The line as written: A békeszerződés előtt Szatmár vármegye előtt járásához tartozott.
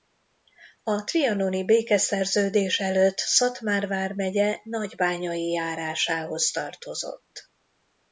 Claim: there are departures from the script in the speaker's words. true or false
true